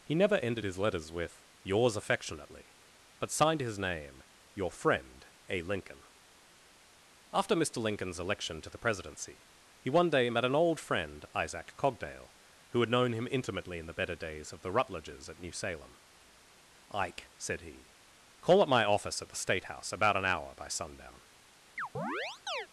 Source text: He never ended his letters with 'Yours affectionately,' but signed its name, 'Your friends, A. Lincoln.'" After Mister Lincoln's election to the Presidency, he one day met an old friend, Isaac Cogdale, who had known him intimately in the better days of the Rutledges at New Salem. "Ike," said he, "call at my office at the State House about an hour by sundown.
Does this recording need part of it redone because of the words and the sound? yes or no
yes